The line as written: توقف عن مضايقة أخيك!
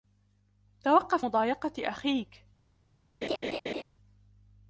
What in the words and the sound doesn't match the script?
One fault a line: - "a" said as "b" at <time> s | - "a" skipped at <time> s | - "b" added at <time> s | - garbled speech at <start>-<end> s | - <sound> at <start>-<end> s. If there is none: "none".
- "عن" skipped at 1.3 s
- laugh at 3.2-3.8 s